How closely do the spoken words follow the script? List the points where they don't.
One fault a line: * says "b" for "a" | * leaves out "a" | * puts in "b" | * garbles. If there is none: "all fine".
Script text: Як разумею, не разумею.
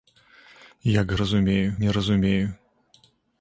all fine